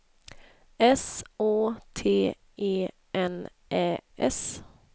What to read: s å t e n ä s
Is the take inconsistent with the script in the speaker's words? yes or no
no